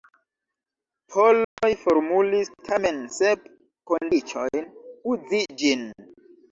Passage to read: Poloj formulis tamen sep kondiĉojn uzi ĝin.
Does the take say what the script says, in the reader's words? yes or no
yes